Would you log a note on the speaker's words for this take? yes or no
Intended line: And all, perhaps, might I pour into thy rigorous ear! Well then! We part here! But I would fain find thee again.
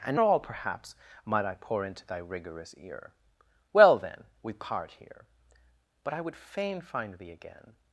no